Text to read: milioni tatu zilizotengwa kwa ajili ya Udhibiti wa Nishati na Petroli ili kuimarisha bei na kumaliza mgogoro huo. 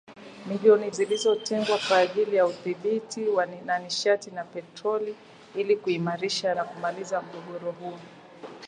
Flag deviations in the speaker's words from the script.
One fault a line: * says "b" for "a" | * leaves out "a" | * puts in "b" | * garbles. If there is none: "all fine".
* leaves out "tatu"
* leaves out "bei"